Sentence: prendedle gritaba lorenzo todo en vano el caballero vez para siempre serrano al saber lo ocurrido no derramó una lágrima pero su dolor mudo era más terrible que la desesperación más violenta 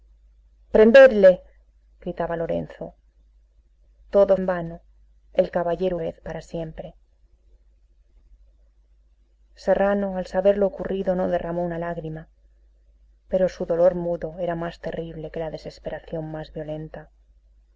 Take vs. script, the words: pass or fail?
pass